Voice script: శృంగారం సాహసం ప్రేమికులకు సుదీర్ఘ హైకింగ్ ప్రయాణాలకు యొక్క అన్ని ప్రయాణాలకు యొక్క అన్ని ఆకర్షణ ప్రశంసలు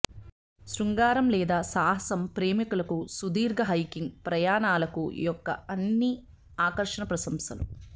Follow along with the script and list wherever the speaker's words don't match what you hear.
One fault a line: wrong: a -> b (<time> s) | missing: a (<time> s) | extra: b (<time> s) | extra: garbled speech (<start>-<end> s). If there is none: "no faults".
extra: లేదా (1.3 s)
missing: ప్రయాణాలకు యొక్క అన్ని (6.1 s)